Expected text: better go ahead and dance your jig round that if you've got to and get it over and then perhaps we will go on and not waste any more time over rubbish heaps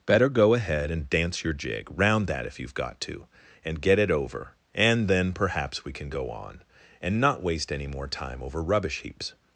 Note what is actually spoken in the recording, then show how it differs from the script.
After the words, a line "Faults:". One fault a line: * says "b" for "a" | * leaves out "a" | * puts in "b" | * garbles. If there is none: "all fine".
better go ahead and dance your jig round that if you've got to and get it over and then perhaps we can go on and not waste any more time over rubbish heaps
Faults:
* says "can" for "will"